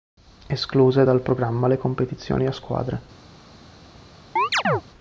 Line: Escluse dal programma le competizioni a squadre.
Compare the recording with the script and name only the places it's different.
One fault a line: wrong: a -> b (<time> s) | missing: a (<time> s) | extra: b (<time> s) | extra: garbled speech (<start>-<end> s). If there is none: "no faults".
no faults